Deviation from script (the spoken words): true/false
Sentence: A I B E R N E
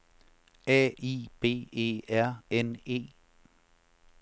false